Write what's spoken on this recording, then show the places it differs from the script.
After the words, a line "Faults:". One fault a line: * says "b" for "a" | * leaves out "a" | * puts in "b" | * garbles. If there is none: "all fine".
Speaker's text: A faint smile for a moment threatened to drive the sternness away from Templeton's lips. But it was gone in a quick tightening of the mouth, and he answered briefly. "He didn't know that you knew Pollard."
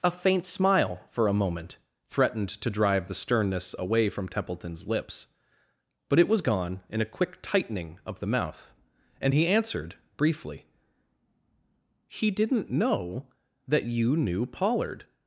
A faint smile for a moment threatened to drive the sternness away from Templeton's lips. But it was gone in a quick tightening of the mouth, and he answered briefly. "He didn't know that you knew Pollard."
Faults:
all fine